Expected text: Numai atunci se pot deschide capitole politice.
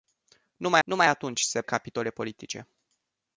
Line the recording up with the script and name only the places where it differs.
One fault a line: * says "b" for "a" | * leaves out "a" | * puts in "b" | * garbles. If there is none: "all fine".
* puts in "numai"
* leaves out "pot deschide"